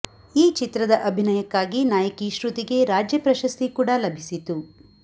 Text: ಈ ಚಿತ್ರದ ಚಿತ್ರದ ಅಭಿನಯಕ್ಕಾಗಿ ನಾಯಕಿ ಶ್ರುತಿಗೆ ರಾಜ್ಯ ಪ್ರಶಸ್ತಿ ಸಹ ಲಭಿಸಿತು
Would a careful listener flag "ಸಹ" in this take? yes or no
yes